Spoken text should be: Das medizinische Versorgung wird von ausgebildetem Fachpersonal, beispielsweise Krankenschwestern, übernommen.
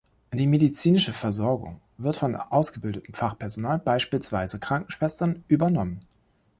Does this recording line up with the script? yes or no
no